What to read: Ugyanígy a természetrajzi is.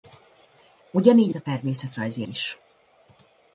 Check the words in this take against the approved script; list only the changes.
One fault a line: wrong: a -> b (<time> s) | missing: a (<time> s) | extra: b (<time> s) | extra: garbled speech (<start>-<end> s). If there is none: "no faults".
no faults